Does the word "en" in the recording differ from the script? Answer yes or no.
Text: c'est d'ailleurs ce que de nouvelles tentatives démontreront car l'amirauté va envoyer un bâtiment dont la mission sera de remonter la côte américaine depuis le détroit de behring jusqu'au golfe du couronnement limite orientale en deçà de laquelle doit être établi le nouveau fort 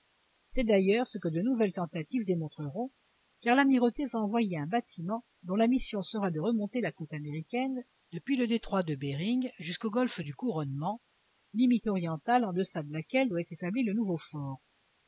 no